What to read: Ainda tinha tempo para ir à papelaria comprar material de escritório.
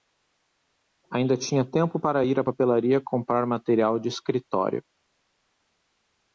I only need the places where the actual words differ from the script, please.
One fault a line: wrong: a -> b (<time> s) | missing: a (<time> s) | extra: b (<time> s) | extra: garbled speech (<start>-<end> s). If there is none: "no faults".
no faults